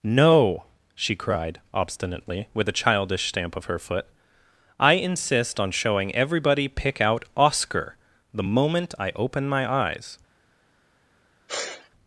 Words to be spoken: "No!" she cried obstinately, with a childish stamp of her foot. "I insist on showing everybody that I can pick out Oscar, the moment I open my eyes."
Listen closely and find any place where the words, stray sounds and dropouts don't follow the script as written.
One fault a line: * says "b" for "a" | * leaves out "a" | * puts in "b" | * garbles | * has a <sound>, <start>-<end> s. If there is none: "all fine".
* leaves out "that I can"
* has a sneeze, 11.5-11.9 s